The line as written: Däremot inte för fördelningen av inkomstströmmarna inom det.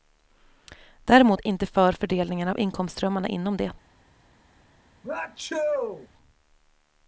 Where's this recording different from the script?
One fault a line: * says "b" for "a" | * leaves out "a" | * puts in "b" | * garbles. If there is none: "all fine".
all fine